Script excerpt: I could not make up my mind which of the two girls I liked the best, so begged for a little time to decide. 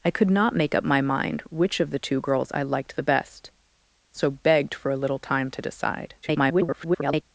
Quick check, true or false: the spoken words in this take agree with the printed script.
false